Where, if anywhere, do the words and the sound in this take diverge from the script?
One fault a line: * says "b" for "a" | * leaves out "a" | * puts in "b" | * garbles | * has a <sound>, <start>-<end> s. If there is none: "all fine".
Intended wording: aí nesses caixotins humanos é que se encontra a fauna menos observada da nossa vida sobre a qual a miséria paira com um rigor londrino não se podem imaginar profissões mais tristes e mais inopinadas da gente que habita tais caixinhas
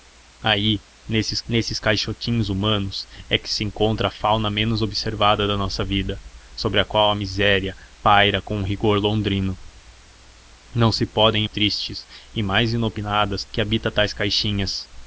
* puts in "nesses"
* leaves out "imaginar profissões mais"
* leaves out "da gente"